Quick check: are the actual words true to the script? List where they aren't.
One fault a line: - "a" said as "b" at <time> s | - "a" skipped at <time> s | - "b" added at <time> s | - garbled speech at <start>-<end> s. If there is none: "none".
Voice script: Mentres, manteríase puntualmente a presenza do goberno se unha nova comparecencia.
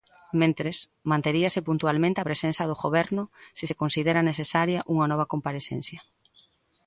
- "se considera necesaria" added at 3.7 s